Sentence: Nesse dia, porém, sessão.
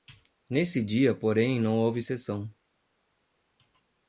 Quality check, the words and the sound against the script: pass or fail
fail